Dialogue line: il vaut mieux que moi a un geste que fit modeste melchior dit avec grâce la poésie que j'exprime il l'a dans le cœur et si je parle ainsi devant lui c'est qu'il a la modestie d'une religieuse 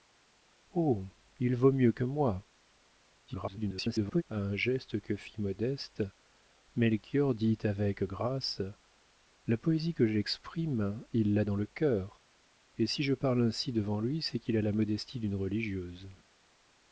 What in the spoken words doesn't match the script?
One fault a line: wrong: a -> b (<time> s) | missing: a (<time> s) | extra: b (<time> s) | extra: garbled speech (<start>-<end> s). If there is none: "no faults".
extra: garbled speech (3.3-4.2 s)